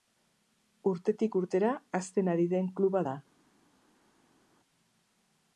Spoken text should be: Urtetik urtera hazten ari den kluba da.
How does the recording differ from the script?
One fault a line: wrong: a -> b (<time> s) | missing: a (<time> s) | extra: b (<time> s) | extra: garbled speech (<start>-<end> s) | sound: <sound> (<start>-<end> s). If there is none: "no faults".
no faults